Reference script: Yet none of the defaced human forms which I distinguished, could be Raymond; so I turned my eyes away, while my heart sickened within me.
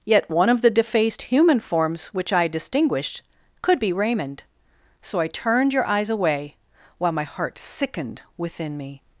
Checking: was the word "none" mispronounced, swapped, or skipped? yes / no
yes